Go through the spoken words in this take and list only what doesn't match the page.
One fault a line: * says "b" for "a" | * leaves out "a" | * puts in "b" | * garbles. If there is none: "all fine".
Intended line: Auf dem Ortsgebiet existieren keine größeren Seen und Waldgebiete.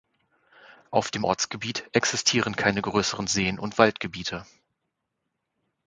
all fine